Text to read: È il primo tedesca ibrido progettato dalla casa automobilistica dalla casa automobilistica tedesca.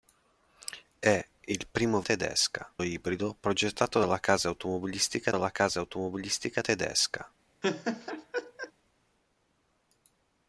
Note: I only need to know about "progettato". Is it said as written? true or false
true